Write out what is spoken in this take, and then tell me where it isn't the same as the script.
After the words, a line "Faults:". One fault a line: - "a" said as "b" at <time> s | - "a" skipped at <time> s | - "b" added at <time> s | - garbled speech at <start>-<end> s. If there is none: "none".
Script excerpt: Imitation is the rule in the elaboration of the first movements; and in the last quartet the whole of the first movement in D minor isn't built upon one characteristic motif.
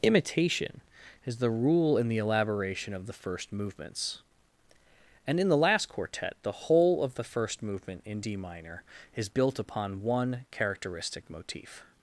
Imitation is the rule in the elaboration of the first movements; and in the last quartet the whole of the first movement in D minor is built upon one characteristic motif.
Faults:
- "isn't" said as "is" at 9.2 s